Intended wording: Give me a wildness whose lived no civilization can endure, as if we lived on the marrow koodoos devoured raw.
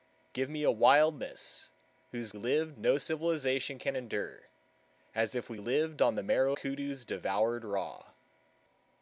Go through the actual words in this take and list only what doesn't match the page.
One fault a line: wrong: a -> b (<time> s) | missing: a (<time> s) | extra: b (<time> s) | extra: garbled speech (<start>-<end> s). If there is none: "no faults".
no faults